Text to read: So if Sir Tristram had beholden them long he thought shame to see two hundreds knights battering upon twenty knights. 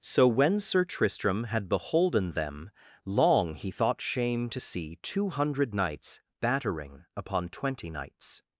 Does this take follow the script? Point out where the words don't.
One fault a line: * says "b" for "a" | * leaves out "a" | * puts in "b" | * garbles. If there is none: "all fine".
* says "when" for "if"
* says "hundred" for "hundreds"